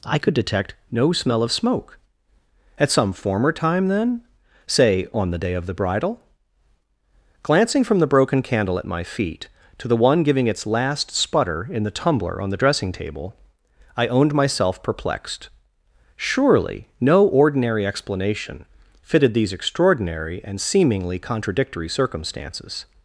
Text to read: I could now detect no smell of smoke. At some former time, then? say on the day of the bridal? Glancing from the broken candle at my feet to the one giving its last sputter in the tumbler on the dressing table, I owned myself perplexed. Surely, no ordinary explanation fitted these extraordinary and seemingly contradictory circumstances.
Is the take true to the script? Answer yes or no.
no